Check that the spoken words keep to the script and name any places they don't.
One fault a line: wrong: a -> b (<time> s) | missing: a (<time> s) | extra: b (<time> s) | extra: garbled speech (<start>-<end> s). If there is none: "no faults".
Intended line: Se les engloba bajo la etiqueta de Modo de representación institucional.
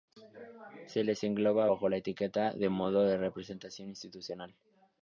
no faults